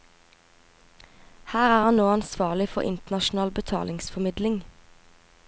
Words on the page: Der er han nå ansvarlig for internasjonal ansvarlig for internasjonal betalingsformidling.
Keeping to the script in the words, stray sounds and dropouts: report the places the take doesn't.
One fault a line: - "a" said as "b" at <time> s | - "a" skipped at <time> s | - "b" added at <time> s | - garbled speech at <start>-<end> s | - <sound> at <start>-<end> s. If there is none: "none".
- "Der" said as "Her" at 1.5 s
- "ansvarlig for internasjonal" skipped at 3.5 s